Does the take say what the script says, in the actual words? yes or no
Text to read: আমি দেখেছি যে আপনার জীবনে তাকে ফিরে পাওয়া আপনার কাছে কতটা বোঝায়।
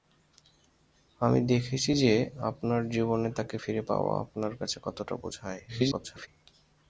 no